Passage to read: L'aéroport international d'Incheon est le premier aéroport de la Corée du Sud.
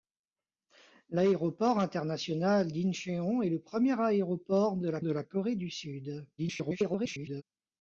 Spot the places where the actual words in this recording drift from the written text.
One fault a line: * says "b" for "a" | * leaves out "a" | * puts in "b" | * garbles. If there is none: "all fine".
* puts in "de la"
* garbles